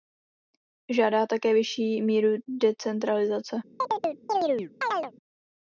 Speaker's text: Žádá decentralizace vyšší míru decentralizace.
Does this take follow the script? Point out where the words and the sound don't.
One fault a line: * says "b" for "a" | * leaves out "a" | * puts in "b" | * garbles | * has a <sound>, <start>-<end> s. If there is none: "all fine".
* says "také" for "decentralizace"
* has a chirp, 3.8-5.1 s